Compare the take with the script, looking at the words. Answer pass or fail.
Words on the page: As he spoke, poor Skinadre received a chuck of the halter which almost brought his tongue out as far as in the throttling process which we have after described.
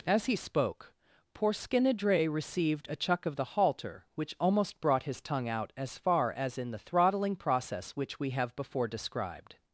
fail